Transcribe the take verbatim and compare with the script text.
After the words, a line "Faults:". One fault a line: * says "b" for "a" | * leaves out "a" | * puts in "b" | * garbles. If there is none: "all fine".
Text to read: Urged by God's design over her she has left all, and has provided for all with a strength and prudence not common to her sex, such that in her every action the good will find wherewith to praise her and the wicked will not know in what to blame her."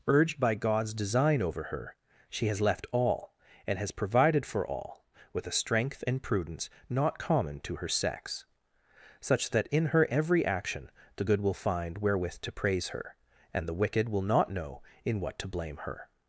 Urged by God's design over her she has left all, and has provided for all with a strength and prudence not common to her sex, such that in her every action the good will find wherewith to praise her and the wicked will not know in what to blame her."
Faults:
all fine